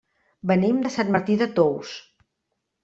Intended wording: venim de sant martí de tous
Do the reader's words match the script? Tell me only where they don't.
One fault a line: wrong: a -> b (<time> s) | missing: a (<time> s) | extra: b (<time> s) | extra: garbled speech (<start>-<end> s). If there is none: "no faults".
no faults